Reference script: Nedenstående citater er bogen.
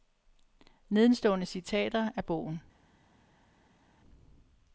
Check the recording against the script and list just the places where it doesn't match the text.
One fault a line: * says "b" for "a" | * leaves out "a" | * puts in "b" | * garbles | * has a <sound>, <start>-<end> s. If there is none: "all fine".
all fine